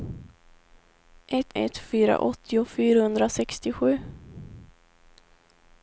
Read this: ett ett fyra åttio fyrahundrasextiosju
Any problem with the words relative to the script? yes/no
no